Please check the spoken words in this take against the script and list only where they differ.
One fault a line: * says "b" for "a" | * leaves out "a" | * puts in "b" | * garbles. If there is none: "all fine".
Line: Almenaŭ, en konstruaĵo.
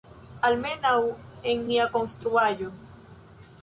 * puts in "nia"